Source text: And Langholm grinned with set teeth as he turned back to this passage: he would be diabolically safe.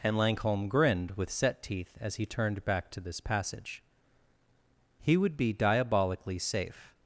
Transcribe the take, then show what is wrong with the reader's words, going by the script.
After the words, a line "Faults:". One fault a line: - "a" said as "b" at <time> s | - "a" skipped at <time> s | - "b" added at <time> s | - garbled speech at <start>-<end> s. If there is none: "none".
And Langholm grinned with set teeth as he turned back to this passage: he would be diabolically safe.
Faults:
none